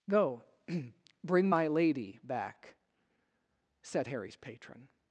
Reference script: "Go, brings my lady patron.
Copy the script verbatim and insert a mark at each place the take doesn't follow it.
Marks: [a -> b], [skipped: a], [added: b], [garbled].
"Go, [brings -> bring] my lady [added: back said Harry's] patron.